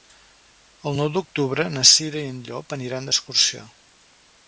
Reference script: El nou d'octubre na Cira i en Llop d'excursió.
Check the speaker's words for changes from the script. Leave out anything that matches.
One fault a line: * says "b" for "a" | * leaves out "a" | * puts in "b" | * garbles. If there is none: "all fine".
* puts in "aniran"